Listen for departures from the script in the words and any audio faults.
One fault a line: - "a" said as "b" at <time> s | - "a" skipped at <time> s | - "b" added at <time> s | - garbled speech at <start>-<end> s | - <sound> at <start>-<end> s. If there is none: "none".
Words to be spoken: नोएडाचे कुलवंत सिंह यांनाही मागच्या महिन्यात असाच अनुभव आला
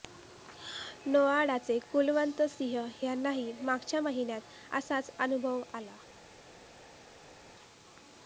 none